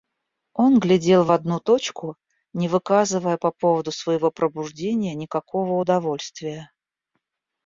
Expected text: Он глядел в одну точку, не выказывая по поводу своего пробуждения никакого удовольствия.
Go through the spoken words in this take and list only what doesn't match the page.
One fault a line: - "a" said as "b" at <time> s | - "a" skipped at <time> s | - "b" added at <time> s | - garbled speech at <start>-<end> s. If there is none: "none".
none